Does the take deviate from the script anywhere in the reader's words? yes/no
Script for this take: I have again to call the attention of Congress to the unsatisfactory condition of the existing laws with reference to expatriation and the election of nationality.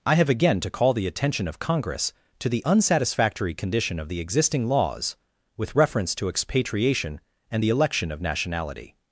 no